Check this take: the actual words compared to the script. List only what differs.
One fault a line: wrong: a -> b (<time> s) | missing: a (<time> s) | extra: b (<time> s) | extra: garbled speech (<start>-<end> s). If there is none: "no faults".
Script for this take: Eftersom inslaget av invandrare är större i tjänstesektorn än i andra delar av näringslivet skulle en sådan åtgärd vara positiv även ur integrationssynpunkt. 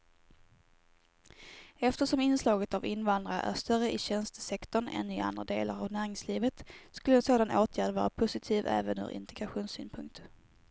no faults